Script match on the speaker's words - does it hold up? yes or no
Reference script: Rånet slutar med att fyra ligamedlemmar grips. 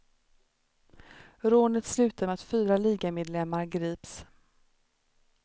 yes